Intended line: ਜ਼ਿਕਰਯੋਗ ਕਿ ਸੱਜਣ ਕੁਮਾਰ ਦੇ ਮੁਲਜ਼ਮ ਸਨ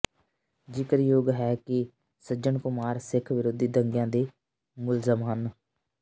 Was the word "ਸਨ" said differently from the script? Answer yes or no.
yes